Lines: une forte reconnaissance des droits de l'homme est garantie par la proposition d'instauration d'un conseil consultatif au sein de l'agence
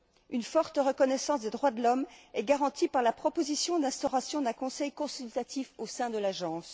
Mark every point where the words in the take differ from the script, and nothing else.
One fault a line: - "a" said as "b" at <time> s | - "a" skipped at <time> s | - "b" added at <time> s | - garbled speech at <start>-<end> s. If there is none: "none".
none